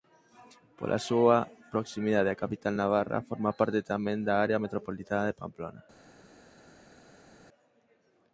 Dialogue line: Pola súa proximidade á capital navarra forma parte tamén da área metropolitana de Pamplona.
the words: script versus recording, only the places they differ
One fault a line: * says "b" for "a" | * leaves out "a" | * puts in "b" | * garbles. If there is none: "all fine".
all fine